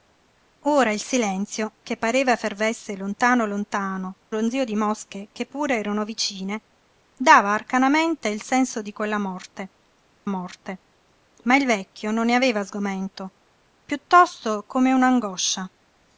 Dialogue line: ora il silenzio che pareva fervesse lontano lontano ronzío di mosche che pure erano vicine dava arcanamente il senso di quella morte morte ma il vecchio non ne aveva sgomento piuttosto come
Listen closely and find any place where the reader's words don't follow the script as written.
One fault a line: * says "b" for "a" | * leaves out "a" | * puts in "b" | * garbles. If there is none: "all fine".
all fine